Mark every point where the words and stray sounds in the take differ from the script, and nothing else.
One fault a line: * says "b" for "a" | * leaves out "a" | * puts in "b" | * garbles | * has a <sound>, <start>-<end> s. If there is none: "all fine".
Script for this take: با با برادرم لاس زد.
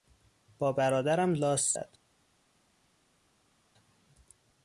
* leaves out "با"